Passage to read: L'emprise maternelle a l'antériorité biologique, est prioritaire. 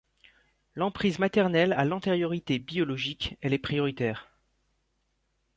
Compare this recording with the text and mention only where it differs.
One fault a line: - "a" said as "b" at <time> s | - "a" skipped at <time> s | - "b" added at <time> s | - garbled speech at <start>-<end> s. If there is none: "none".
- "elle" added at 3.4 s